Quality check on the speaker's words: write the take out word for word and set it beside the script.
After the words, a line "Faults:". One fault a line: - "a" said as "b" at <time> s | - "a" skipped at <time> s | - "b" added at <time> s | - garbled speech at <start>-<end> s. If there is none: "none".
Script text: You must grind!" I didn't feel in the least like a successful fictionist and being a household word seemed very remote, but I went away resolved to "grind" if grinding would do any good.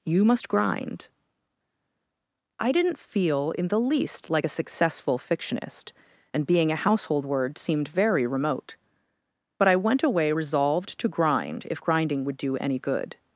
You must grind!" I didn't feel in the least like a successful fictionist and being a household word seemed very remote, but I went away resolved to "grind" if grinding would do any good.
Faults:
none